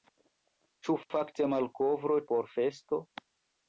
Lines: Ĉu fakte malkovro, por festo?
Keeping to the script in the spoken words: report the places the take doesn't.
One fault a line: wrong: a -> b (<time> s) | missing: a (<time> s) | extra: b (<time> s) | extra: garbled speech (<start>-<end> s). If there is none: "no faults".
no faults